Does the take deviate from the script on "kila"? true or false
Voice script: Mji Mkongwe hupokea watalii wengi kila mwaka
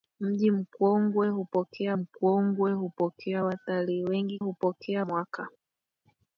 true